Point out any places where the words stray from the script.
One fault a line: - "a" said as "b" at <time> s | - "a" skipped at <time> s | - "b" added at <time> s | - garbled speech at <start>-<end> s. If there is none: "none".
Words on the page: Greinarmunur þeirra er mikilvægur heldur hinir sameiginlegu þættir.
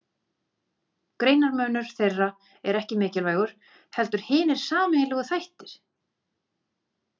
- "ekki" added at 2.8 s